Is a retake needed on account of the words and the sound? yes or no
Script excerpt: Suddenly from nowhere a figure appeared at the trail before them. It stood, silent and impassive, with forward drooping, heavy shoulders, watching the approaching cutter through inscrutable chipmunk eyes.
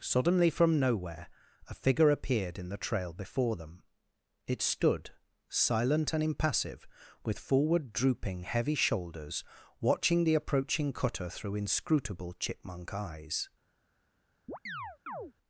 yes